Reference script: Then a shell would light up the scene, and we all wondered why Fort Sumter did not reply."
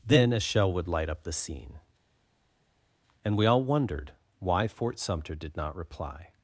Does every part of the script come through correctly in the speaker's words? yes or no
yes